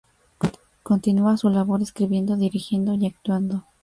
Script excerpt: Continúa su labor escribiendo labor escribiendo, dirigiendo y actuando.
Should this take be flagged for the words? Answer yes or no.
yes